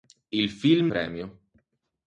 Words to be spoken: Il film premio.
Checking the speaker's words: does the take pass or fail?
pass